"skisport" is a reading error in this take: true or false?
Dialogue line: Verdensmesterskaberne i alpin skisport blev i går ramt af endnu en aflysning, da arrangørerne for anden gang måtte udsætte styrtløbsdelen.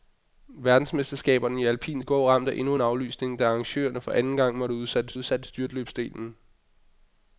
true